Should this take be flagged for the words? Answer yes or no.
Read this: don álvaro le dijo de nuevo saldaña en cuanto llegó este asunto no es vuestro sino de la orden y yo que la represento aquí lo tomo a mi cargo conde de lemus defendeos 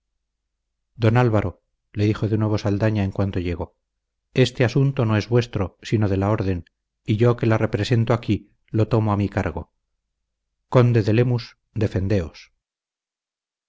no